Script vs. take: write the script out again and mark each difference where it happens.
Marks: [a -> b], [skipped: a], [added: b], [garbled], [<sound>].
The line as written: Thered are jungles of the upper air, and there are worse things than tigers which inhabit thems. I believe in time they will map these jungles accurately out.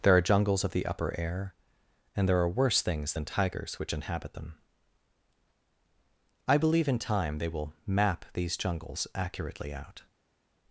[Thered -> There] are jungles of the upper air, and there are worse things than tigers which inhabit [thems. -> them] I believe in time they will map these jungles accurately out.